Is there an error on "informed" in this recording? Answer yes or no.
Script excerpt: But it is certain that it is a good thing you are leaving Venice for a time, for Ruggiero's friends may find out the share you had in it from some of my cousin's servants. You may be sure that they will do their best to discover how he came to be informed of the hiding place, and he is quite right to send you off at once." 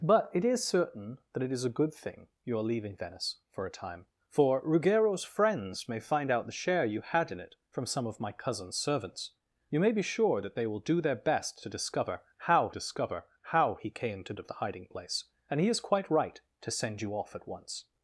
yes